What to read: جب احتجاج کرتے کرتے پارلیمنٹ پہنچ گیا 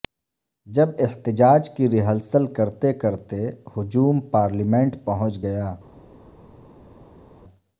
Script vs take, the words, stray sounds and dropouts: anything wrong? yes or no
yes